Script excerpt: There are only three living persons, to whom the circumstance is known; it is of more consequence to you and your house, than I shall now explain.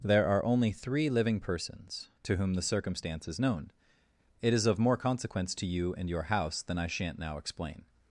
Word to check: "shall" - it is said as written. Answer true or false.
false